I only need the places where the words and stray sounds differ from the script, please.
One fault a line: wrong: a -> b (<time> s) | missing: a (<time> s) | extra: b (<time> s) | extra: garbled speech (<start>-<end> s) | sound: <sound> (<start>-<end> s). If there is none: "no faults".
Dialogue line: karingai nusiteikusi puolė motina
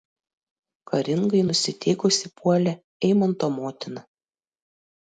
extra: eimanto (3.1 s)